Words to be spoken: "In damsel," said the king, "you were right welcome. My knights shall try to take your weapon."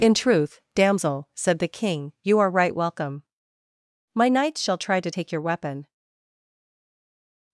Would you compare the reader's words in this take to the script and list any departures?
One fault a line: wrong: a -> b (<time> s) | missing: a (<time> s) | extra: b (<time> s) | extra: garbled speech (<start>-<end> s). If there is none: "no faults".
extra: truth (0.1 s)
wrong: were -> are (2.4 s)